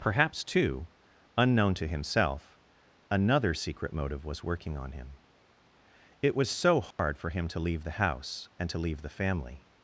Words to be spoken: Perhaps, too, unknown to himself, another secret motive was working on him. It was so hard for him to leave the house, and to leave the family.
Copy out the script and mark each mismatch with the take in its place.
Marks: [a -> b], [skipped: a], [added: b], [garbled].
Perhaps, too, unknown to himself, another secret motive was working on him. It was so hard for him to leave the house, and to leave the family.